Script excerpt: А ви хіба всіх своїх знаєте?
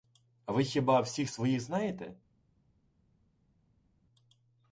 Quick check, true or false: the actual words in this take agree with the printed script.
true